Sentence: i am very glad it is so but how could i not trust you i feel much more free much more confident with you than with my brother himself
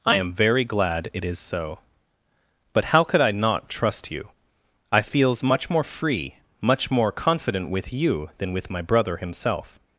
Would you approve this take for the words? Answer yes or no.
no